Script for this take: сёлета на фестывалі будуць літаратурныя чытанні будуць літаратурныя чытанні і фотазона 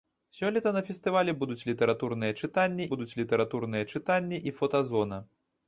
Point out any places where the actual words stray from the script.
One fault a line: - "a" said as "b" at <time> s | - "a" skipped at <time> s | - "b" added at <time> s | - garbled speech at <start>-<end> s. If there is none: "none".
none